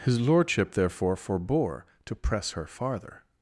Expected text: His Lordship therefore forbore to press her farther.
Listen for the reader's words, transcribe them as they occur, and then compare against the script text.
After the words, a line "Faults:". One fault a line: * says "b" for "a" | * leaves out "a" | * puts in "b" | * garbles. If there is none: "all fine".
His Lordship therefore forbore to press her farther.
Faults:
all fine